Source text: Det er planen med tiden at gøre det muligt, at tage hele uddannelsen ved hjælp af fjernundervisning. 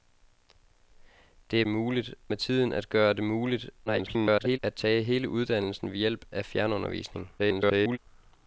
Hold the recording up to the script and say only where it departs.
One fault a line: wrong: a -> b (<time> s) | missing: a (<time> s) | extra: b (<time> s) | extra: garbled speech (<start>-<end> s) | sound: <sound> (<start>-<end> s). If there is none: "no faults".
wrong: planen -> muligt (1.7 s)
extra: garbled speech (3.9-4.6 s)
extra: garbled speech (7.4-8.0 s)